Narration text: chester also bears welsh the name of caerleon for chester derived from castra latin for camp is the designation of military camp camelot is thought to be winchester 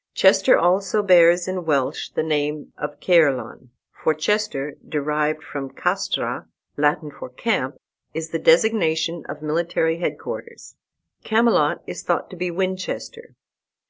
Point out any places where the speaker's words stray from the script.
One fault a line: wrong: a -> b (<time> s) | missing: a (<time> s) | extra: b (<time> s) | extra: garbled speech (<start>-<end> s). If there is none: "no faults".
extra: in (1.5 s)
wrong: camp -> headquarters (10.0 s)